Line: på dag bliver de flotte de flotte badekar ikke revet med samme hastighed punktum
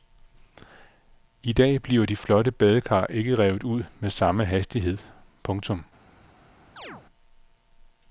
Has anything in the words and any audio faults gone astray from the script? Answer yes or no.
yes